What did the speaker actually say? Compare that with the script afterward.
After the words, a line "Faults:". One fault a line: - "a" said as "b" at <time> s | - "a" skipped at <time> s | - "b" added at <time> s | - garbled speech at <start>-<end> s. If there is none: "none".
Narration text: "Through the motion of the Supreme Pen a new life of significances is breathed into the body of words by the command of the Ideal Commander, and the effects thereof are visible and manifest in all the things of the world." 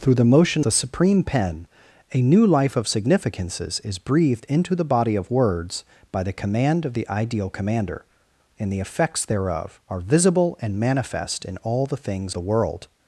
"Through the motion the Supreme Pen a new life of significances is breathed into the body of words by the command of the Ideal Commander, and the effects thereof are visible and manifest in all the things the world."
Faults:
- "of" skipped at 0.7 s
- "of" skipped at 12.4 s